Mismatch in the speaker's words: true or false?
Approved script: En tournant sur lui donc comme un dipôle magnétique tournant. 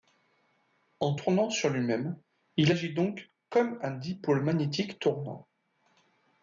true